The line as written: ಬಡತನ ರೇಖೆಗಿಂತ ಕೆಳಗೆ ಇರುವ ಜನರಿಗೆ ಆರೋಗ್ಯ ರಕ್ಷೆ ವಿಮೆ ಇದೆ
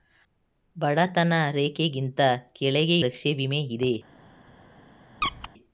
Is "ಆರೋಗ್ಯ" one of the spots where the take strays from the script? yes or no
yes